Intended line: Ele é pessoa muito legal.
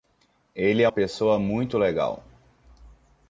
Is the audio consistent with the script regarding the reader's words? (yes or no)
yes